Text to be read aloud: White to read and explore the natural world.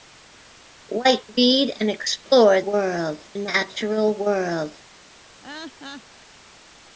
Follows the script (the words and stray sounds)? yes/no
no